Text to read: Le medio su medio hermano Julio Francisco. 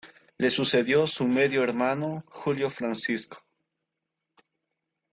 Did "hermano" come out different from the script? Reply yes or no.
no